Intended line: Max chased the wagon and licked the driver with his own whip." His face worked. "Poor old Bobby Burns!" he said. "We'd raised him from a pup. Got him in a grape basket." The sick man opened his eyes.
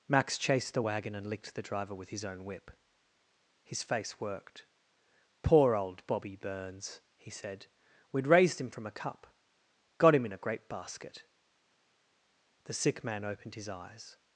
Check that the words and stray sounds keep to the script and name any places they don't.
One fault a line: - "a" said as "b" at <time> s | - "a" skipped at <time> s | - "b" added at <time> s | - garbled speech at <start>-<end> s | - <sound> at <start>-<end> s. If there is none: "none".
- "pup" said as "cup" at 8.9 s